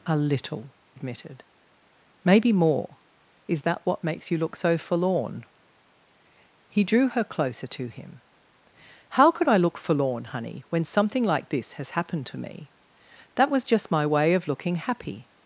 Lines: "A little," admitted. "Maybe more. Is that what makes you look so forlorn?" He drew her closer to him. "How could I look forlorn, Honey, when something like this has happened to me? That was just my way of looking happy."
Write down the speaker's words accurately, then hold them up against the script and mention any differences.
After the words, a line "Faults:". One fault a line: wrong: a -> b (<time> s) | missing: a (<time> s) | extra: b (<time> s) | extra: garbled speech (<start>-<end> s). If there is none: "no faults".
"A little," admitted. "Maybe more. Is that what makes you look so forlorn?" He drew her closer to him. "How could I look forlorn, Honey, when something like this has happened to me? That was just my way of looking happy."
Faults:
no faults